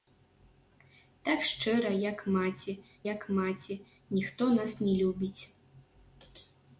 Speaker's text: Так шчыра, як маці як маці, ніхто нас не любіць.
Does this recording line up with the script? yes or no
yes